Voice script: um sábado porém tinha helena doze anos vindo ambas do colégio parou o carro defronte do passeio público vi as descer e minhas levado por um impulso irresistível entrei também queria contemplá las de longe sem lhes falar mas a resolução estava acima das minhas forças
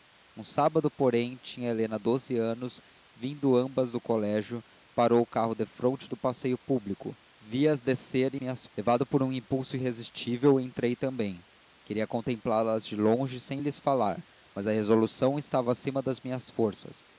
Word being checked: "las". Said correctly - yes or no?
yes